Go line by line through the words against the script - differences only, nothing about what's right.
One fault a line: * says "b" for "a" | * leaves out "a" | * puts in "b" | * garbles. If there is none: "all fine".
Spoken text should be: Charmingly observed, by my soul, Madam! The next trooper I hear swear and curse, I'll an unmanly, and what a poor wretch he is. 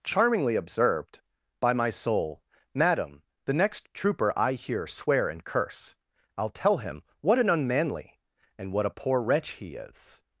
* puts in "tell him what"